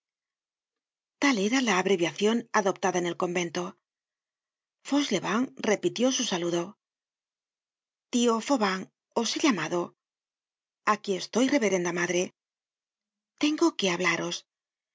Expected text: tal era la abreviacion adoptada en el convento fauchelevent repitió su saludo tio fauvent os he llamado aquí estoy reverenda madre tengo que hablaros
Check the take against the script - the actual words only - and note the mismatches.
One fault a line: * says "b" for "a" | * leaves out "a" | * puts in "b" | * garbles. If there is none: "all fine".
all fine